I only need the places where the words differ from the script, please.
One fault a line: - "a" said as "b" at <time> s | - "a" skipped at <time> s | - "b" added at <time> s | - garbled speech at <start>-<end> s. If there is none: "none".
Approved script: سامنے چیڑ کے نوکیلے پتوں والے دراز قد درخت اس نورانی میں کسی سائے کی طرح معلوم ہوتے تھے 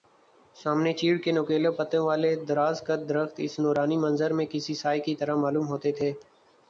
- "منظر" added at 4.0 s